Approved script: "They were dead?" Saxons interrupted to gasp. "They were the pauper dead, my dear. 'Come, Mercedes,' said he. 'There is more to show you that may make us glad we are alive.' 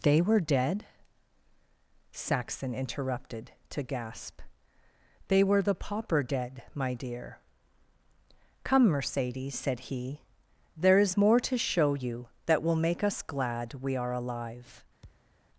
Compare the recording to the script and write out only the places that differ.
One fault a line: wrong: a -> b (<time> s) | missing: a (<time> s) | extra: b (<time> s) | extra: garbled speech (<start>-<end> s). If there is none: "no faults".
wrong: Saxons -> Saxon (2.1 s)
wrong: may -> will (12.6 s)